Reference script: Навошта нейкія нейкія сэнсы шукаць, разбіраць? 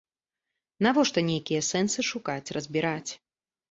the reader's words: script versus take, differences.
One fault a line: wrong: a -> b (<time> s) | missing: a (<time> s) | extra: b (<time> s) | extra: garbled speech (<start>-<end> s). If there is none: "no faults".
missing: нейкія (1.6 s)